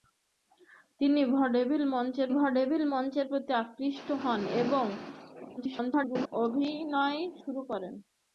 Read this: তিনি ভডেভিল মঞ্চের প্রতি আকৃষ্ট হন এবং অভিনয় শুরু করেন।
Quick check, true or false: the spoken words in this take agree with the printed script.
false